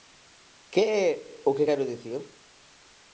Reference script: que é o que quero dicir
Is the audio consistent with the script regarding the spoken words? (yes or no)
yes